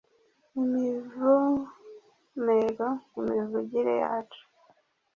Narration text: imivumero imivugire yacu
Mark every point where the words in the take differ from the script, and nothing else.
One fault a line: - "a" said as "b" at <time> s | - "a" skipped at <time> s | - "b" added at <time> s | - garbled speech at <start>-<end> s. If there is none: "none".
none